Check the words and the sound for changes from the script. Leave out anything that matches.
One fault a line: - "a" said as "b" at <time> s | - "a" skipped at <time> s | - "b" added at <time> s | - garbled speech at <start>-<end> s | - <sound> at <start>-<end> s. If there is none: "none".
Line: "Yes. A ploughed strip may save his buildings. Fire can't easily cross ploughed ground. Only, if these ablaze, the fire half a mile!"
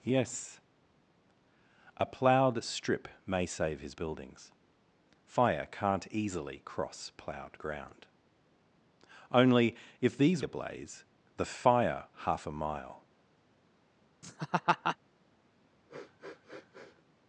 - laugh at 14.2-15.0 s
- sniff at 15.9-17.1 s